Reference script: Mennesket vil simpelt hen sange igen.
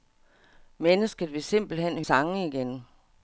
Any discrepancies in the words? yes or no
no